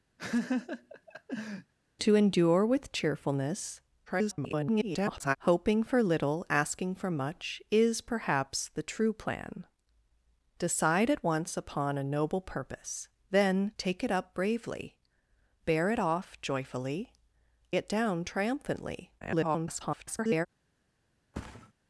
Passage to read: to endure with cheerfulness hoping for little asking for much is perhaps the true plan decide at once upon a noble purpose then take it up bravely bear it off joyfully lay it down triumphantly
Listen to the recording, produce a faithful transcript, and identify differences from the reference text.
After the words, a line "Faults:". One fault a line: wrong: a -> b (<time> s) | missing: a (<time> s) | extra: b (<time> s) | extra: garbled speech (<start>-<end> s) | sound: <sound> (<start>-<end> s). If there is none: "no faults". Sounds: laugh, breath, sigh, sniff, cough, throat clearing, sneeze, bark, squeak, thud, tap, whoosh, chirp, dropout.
to endure with cheerfulness [garbled] hoping for little asking for much is perhaps the true plan decide at once upon a noble purpose then take it up bravely bear it off joyfully it down triumphantly [garbled]
Faults:
sound: laugh (0.2-1.7 s)
extra: garbled speech (4.1-5.4 s)
missing: lay (17.1 s)
extra: garbled speech (19.2-20.5 s)
sound: thud (21.3-21.7 s)